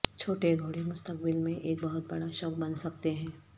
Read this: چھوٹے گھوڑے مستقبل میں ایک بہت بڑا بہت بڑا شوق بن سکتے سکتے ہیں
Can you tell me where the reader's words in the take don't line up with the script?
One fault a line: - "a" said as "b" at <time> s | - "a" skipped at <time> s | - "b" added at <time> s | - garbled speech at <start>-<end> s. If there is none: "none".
- "بہت بڑا" skipped at 2.3 s
- "سکتے" skipped at 3.1 s